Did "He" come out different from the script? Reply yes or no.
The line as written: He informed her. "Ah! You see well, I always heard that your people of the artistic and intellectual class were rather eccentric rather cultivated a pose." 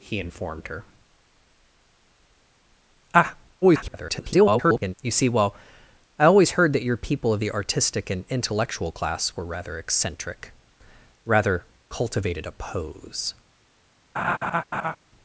no